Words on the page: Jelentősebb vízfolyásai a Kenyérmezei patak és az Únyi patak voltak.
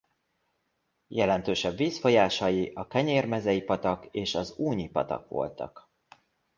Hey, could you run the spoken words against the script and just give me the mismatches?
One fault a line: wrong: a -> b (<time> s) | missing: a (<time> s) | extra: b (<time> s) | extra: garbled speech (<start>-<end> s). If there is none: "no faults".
no faults